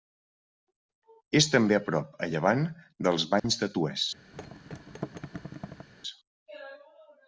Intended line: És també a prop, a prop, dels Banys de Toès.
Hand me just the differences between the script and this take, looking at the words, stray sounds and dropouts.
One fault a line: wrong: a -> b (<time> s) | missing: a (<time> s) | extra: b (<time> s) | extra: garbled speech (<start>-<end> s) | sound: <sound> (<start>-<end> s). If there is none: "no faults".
wrong: prop -> llevant (2.3 s)
sound: dropout (3.4-3.4 s)
sound: thud (4.3-5.9 s)